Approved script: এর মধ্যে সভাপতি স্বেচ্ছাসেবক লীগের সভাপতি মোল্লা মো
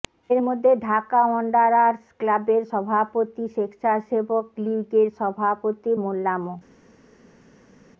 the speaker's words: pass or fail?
fail